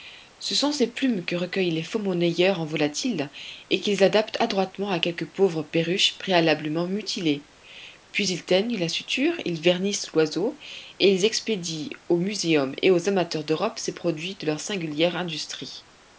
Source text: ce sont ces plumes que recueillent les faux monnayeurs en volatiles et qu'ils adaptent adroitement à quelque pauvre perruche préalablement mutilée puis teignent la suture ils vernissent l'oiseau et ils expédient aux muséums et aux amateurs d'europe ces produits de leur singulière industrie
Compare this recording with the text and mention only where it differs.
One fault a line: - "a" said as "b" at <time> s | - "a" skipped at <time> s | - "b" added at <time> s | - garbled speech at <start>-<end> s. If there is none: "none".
- "ils" added at 8.3 s